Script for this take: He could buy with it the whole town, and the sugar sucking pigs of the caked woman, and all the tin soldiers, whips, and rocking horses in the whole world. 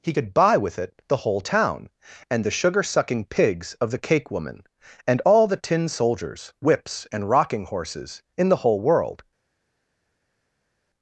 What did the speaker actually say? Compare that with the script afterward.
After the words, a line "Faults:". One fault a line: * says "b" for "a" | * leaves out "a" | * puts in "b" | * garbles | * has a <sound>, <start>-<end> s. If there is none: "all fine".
He could buy with it the whole town, and the sugar sucking pigs of the cake woman, and all the tin soldiers, whips, and rocking horses in the whole world.
Faults:
* says "cake" for "caked"